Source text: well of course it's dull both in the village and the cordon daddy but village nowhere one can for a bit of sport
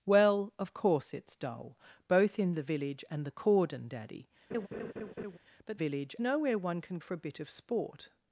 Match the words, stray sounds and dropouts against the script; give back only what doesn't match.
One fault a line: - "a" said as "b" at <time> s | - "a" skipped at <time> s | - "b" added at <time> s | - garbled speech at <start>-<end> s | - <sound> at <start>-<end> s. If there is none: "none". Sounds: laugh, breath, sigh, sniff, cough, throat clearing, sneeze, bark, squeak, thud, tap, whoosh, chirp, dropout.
- laugh at 4.5-5.4 s